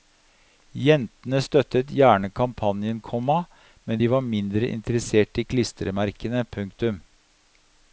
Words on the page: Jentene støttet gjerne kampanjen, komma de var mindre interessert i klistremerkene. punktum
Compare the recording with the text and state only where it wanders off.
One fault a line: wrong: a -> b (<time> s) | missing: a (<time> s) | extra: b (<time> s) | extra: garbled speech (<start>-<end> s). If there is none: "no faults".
extra: men (3.9 s)